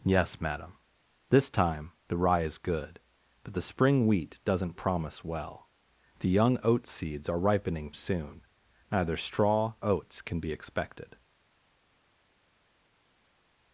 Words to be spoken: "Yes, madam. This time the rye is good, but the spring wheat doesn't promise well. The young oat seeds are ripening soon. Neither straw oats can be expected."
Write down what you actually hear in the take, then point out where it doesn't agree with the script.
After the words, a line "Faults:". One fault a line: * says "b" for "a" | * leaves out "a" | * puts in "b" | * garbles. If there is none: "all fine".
"Yes, madam. This time the rye is good, but the spring wheat doesn't promise well. The young oat seeds are ripening soon. Neither straw oats can be expected."
Faults:
all fine